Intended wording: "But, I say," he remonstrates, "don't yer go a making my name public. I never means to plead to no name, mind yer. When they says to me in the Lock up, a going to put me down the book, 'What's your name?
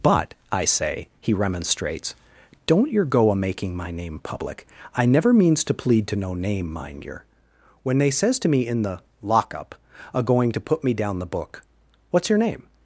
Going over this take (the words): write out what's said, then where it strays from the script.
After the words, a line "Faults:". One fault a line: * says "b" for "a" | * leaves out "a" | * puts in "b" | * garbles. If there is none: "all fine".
"But, I say," he remonstrates, "don't yer go a making my name public. I never means to plead to no name, mind yer. When they says to me in the Lock up, a going to put me down the book, 'What's your name?
Faults:
all fine